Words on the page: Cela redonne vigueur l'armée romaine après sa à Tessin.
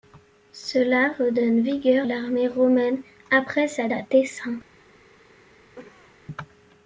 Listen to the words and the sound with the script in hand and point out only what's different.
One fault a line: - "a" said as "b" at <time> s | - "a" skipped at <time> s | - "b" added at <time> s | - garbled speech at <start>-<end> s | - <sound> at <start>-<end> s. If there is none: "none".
- cough at 5.8-6.2 s